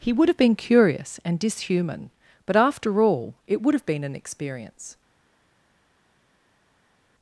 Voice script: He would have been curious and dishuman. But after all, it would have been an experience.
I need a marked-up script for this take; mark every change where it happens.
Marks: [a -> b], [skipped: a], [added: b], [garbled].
He would have been curious and dishuman. But after all, it would have been an experience.